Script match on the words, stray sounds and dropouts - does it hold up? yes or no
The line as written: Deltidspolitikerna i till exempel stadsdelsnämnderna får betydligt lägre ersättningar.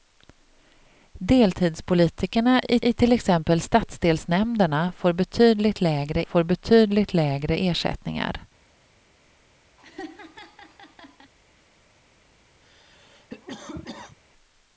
no